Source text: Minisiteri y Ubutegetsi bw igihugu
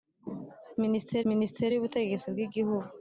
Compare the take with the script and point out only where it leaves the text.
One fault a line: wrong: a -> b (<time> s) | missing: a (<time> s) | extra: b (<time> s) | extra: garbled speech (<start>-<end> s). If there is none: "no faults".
extra: minisiteri (1.3 s)